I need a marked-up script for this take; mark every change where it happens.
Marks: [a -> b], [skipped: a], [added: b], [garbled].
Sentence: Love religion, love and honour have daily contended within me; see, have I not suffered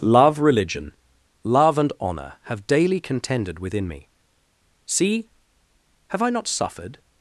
Love religion, love and honour have daily contended within me; see, have I not suffered